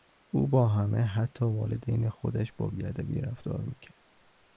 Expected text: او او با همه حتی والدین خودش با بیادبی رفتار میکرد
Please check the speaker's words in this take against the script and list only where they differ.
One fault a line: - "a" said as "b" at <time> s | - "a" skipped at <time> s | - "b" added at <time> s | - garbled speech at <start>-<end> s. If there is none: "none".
- "او" skipped at 0.5 s